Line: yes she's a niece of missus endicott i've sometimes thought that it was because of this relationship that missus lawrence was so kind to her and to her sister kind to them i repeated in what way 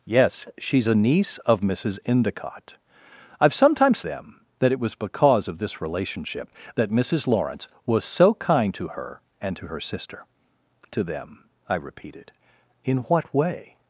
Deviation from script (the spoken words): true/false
true